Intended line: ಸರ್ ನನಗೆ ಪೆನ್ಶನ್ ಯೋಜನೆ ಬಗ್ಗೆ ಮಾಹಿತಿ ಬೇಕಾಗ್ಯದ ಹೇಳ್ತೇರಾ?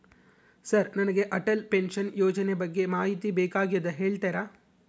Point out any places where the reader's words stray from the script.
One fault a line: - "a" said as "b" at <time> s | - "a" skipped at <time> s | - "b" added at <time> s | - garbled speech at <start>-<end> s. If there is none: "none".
- "ಅಟಲ್" added at 1.3 s